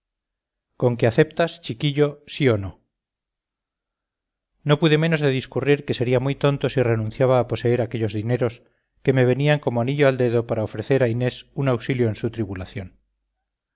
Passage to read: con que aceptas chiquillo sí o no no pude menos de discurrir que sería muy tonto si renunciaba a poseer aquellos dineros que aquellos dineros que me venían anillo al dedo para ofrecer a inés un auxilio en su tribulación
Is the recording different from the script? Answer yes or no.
yes